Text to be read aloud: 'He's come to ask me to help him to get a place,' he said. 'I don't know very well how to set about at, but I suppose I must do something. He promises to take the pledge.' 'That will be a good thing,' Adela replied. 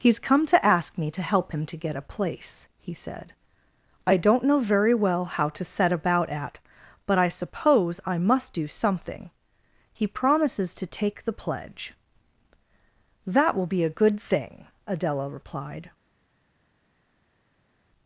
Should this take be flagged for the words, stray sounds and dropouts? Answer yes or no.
no